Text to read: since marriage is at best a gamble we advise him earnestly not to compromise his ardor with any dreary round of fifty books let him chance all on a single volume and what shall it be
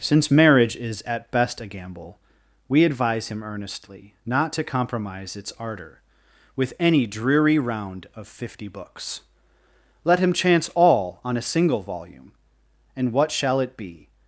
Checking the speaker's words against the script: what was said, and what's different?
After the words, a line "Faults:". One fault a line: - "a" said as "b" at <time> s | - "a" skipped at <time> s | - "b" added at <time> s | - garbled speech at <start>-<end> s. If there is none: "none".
since marriage is at best a gamble we advise him earnestly not to compromise its ardor with any dreary round of fifty books let him chance all on a single volume and what shall it be
Faults:
- "his" said as "its" at 5.4 s